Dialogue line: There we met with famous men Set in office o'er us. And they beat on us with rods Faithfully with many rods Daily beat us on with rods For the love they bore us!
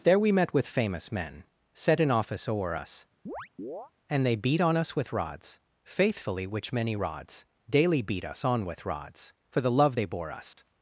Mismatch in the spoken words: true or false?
true